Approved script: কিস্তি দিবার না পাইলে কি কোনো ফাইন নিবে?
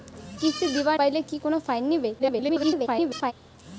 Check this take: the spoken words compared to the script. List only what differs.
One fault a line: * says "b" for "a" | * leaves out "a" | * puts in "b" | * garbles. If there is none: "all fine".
* leaves out "না"
* garbles